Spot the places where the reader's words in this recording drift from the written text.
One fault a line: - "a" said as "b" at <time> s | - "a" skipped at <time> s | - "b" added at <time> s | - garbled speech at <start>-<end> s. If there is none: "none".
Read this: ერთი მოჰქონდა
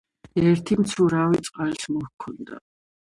- "მცურავი წყალს" added at 0.8 s